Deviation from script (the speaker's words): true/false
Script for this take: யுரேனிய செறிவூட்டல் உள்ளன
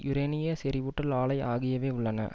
true